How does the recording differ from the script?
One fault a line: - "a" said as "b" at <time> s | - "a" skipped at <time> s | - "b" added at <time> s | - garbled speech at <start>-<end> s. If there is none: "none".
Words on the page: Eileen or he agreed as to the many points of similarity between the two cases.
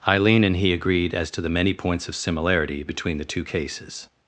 - "or" said as "and" at 0.4 s